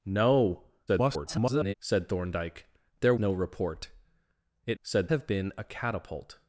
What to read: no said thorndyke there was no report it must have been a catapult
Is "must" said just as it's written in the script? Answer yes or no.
no